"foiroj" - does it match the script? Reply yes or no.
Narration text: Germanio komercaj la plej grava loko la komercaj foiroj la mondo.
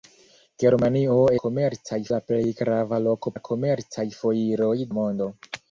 yes